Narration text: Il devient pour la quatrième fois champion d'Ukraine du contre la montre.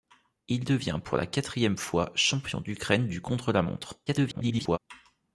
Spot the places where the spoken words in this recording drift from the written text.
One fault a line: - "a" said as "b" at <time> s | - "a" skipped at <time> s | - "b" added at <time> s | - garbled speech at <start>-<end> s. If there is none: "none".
- garbled speech at 4.1-4.8 s